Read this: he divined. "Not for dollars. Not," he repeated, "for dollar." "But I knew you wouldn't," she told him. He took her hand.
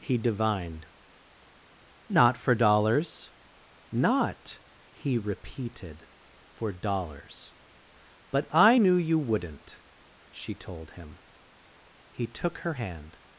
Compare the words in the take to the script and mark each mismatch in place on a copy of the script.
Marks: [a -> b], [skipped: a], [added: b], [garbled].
he divined. "Not for dollars. Not," he repeated, "for [dollar." -> dollars] "But I knew you wouldn't," she told him. He took her hand.